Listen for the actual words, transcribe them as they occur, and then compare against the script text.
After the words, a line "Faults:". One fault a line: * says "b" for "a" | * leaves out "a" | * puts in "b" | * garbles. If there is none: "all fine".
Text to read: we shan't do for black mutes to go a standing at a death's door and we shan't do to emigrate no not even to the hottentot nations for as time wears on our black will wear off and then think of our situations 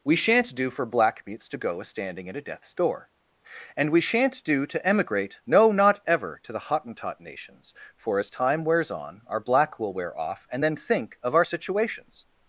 we shan't do for black mutes to go a standing at a death's door and we shan't do to emigrate no not ever to the hottentot nations for as time wears on our black will wear off and then think of our situations
Faults:
* says "ever" for "even"